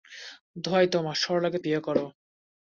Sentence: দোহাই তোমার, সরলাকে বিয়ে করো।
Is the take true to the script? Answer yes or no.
yes